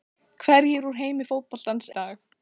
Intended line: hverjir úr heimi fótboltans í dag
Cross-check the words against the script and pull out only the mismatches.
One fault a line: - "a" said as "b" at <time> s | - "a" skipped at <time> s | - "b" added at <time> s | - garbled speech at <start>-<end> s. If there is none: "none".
none